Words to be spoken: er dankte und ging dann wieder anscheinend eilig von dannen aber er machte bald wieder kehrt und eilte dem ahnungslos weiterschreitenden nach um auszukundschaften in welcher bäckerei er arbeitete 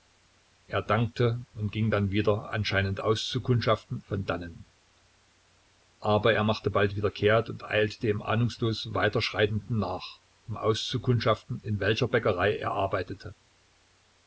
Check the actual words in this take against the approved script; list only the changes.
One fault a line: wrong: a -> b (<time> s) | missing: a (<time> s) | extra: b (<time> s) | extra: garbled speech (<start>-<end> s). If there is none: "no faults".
wrong: eilig -> auszukundschaften (3.0 s)